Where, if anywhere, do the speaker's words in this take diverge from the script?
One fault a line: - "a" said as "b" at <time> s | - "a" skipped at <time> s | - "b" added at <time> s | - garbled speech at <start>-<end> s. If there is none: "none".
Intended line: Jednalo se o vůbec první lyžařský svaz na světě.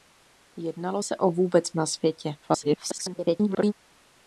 - "první lyžařský svaz" skipped at 1.7 s
- garbled speech at 2.4-3.7 s